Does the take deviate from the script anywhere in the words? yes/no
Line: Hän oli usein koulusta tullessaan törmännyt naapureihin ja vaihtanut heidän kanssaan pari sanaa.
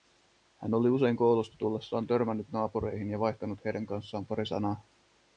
no